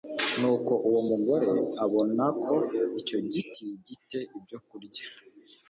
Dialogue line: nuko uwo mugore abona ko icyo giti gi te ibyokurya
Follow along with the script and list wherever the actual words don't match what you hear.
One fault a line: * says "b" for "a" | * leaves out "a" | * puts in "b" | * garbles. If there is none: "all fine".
all fine